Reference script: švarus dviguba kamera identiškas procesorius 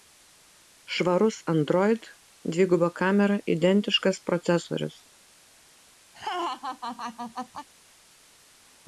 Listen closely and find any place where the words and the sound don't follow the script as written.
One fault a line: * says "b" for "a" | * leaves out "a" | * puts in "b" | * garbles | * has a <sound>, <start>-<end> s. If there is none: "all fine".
* puts in "android"
* has a laugh, 6.1-7.7 s